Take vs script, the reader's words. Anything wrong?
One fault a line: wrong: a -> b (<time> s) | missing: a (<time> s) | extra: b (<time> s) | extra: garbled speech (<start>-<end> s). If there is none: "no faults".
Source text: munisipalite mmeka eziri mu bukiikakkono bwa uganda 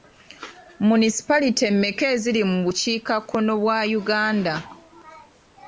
no faults